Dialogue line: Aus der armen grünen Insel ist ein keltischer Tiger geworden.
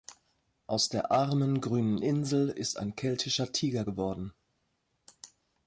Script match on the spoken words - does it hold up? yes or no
yes